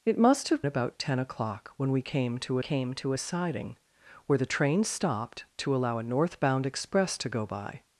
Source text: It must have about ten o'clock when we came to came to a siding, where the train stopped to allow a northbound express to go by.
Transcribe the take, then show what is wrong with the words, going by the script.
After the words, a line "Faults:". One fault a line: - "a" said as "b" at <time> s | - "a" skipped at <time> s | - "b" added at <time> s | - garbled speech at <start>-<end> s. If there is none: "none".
It must have about ten o'clock when we came to came to a siding, where the train stopped to allow a northbound express to go by.
Faults:
none